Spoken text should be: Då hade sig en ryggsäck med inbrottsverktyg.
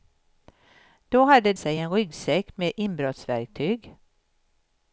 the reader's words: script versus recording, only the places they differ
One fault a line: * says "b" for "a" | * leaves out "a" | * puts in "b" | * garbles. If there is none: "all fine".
all fine